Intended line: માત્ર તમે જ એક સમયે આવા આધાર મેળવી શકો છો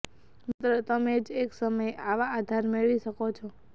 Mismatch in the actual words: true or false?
false